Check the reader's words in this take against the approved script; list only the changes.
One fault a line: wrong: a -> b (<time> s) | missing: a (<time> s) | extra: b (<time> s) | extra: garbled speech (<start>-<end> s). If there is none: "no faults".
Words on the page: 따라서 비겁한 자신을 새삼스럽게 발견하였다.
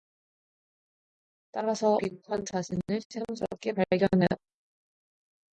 no faults